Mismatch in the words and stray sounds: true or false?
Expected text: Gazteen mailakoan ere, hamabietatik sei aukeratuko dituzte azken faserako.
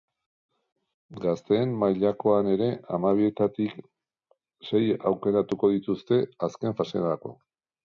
false